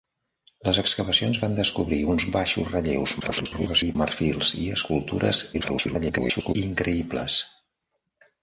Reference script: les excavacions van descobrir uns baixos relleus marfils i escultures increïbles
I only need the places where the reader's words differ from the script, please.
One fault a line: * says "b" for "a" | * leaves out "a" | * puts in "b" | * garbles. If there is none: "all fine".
* garbles
* garbles